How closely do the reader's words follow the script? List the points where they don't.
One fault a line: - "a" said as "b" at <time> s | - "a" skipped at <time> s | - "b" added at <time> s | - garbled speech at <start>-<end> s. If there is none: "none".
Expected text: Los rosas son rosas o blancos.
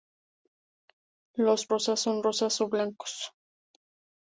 none